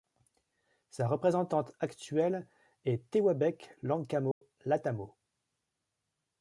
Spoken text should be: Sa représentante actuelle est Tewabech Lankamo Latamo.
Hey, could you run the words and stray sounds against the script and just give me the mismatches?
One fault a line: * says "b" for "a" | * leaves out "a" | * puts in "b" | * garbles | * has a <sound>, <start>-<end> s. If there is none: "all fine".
* has a dropout, 4.3-4.4 s